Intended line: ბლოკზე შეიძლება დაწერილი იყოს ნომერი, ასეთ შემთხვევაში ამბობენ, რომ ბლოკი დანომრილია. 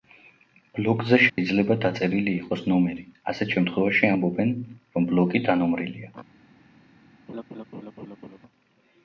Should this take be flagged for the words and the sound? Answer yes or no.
yes